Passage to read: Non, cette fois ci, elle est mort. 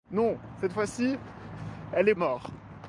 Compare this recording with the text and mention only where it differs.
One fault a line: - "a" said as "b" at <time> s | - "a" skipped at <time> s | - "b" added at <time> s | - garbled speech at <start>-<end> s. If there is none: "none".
none